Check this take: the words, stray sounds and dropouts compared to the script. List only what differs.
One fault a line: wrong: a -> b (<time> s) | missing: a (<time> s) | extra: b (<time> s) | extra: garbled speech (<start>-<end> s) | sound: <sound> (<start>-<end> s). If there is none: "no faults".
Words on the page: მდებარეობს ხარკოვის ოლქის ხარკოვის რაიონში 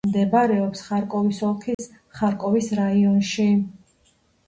sound: dropout (1.7-1.8 s)